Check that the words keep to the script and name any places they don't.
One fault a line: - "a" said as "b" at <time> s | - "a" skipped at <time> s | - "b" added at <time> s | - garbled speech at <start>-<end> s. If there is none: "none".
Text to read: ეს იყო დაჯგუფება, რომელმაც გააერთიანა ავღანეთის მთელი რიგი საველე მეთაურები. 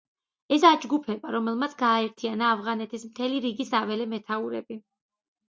- "იყო" skipped at 0.6 s